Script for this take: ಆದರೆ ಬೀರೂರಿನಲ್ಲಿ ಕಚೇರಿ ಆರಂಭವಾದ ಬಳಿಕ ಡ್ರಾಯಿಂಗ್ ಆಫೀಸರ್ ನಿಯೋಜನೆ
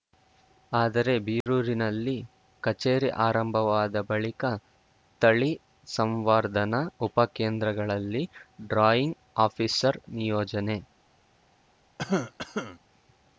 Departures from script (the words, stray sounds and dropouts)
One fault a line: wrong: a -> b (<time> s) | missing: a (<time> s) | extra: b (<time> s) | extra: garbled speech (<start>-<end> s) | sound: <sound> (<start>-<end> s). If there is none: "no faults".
sound: dropout (1.4-1.5 s)
extra: ತಳಿ ಸಂವರ್ಧನಾ ಉಪಕೇಂದ್ರಗಳಲ್ಲಿ (5.2 s)
sound: cough (12.0-12.8 s)